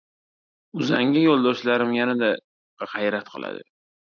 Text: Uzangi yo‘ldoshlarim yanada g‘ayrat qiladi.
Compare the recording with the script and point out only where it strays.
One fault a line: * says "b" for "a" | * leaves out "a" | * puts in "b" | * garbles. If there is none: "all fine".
all fine